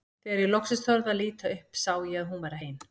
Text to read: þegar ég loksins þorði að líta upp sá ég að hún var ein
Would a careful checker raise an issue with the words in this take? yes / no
no